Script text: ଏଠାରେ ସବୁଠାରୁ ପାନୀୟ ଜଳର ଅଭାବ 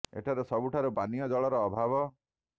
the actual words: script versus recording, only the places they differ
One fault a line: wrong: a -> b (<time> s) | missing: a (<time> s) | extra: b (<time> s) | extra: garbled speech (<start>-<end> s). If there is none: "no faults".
no faults